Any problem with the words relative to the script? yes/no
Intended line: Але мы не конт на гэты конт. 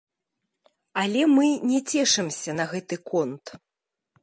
yes